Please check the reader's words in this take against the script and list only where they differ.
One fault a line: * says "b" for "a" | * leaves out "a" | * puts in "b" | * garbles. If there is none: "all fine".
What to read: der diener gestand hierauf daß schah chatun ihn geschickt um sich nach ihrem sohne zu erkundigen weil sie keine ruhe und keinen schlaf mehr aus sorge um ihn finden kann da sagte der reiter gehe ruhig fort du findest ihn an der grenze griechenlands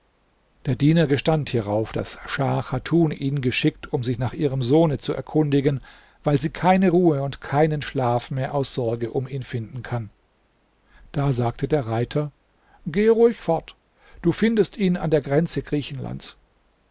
all fine